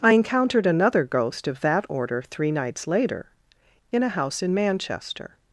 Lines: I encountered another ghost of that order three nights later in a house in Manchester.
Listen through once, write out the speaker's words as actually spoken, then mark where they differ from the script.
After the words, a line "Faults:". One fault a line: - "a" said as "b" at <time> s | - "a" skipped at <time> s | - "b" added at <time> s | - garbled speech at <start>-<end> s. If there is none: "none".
I encountered another ghost of that order three nights later in a house in Manchester.
Faults:
none